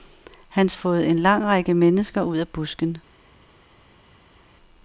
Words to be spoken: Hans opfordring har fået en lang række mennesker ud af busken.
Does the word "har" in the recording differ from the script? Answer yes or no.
yes